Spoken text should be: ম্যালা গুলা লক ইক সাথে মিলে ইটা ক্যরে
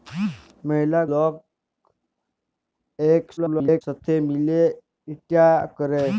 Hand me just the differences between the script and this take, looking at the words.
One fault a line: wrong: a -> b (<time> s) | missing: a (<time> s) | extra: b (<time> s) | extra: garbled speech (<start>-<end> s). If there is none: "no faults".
missing: গুলা (1.0 s)
extra: garbled speech (3.4-3.8 s)